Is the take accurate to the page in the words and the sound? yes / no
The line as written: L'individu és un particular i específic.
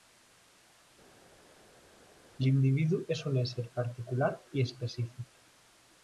no